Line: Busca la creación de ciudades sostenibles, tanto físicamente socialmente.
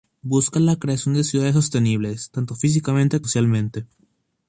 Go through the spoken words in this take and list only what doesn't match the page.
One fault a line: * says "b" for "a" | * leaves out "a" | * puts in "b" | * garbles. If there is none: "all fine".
all fine